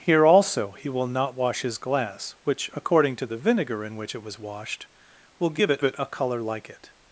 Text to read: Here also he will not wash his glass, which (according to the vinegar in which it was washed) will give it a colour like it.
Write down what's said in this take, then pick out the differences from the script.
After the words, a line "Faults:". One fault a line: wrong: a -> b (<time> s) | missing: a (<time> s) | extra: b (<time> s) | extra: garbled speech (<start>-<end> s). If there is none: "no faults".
Here also he will not wash his glass, which (according to the vinegar in which it was washed) will give it it a colour like it.
Faults:
extra: it (5.8 s)